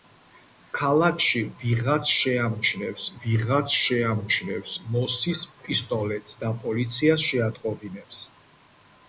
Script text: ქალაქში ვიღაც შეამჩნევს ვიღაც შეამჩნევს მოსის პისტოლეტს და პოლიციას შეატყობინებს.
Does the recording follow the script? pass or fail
pass